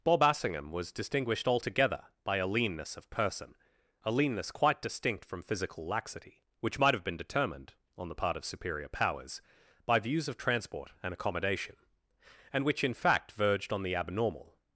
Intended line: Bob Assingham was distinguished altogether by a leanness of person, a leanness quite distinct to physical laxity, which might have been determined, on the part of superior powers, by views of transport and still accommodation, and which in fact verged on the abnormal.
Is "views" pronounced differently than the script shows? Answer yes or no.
no